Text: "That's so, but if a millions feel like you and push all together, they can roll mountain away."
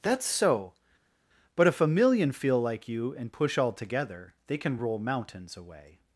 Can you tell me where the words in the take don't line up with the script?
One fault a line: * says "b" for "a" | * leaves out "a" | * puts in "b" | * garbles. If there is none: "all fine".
* says "million" for "millions"
* says "mountains" for "mountain"